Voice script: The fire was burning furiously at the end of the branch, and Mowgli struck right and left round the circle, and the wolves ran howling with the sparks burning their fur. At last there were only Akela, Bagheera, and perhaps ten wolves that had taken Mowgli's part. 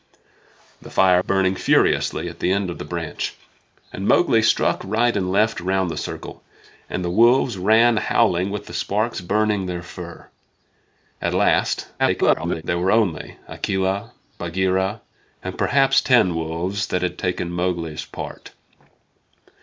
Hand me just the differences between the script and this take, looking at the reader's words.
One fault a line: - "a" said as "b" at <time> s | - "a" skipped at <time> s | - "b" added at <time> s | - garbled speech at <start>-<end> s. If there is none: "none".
- "was" skipped at 1.2 s
- garbled speech at 12.0-12.6 s